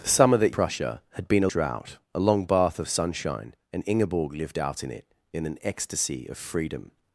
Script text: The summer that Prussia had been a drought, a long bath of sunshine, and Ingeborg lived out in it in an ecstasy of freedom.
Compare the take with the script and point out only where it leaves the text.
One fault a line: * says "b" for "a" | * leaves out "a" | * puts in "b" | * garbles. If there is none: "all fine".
all fine